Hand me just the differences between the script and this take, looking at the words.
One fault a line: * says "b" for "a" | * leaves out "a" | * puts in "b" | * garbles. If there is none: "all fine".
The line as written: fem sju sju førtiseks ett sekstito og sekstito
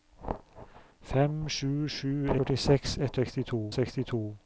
all fine